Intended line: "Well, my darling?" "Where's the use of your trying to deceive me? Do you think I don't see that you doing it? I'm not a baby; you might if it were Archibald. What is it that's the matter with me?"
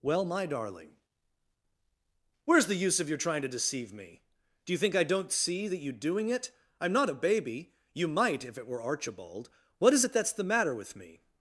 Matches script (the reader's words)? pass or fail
pass